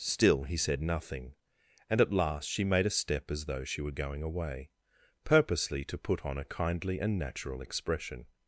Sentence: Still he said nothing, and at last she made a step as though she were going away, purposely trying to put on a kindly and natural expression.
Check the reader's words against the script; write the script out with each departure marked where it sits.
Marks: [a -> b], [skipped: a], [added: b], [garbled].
Still he said nothing, and at last she made a step as though she were going away, purposely [skipped: trying] to put on a kindly and natural expression.